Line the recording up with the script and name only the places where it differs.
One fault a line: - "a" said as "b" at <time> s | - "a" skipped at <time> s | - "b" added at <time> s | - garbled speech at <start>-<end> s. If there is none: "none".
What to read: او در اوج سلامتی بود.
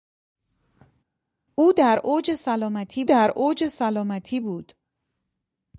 - "در اوج سلامتی" added at 3.0 s